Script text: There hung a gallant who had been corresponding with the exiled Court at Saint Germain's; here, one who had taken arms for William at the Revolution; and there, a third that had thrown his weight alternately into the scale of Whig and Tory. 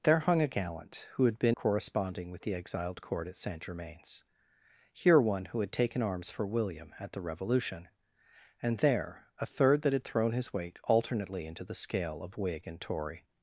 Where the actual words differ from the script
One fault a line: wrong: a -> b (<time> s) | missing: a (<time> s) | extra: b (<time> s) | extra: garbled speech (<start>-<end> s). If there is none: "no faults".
no faults